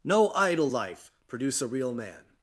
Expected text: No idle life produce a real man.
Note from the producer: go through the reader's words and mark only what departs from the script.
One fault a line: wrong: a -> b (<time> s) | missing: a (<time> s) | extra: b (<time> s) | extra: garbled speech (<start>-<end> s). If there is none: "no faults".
no faults